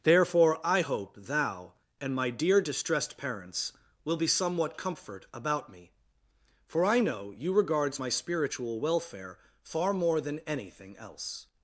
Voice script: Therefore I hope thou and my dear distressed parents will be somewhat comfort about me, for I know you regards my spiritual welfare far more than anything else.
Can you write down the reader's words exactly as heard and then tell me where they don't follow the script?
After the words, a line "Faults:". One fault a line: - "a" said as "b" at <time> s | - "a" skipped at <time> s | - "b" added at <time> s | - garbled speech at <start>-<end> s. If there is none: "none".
Therefore I hope thou and my dear distressed parents will be somewhat comfort about me, for I know you regards my spiritual welfare far more than anything else.
Faults:
none